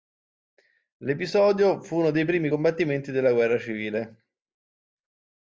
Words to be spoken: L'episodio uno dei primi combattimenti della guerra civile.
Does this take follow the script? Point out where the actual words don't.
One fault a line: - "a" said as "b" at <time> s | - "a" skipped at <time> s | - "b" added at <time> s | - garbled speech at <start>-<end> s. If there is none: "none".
- "fu" added at 1.8 s